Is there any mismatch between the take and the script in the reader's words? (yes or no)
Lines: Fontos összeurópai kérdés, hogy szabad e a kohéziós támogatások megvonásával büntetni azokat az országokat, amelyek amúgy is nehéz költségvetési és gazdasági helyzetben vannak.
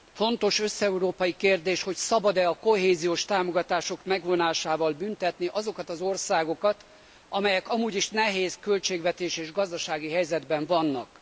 no